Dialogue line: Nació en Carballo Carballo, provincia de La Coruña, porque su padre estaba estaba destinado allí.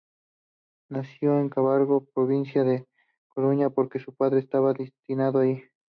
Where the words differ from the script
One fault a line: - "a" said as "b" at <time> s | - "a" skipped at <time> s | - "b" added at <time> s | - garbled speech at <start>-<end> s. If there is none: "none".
- "Carballo" skipped at 2.1 s
- "estaba" skipped at 4.7 s